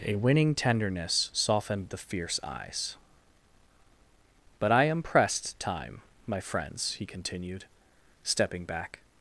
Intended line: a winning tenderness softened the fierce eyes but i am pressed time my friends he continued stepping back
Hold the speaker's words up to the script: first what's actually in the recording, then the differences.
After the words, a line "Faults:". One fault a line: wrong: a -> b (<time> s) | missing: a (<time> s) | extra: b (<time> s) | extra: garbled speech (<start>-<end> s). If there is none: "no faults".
a winning tenderness softened the fierce eyes but i am pressed time my friends he continued stepping back
Faults:
no faults